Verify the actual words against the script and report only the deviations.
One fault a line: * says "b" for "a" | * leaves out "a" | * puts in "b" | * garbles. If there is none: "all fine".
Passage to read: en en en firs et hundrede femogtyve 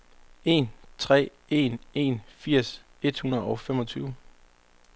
* puts in "tre"
* puts in "og"